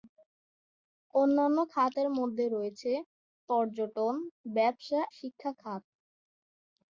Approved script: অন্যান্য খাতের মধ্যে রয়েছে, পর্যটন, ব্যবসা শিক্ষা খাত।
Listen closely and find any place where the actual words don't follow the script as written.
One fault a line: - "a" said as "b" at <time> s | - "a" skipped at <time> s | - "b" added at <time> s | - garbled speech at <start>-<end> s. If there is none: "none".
none